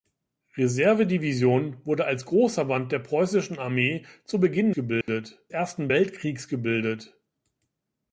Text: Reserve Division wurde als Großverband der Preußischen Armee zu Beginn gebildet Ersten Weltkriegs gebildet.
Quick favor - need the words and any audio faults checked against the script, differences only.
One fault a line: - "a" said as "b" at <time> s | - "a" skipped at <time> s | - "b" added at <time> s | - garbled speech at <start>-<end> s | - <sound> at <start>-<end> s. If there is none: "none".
- dropout at 5.0-5.1 s